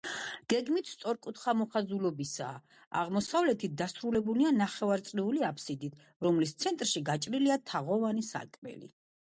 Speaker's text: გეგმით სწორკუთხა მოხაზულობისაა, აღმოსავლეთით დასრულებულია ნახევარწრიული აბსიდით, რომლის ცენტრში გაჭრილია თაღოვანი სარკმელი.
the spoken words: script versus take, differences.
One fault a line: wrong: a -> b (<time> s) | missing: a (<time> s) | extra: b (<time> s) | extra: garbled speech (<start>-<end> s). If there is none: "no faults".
no faults